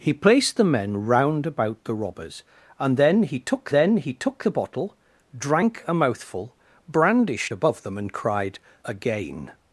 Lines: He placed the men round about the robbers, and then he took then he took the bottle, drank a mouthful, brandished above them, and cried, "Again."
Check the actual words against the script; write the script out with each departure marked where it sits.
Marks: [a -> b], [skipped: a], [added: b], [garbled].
He placed the men round about the robbers, and then he took then he took the bottle, drank a mouthful, brandished above them, and cried, "Again."